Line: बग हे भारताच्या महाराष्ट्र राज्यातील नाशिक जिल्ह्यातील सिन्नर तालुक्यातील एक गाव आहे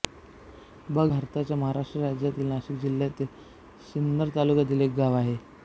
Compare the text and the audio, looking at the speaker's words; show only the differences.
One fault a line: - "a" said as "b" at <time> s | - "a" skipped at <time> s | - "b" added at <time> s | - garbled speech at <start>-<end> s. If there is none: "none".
- "हे" skipped at 1.1 s